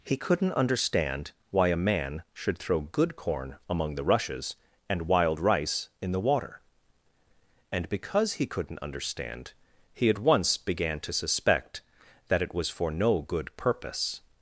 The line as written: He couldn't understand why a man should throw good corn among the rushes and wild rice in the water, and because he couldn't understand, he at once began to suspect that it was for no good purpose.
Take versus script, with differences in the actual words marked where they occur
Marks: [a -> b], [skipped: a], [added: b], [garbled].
He couldn't understand why a man should throw good corn among the rushes and wild rice in the water, and because he couldn't understand, he at once began to suspect that it was for no good purpose.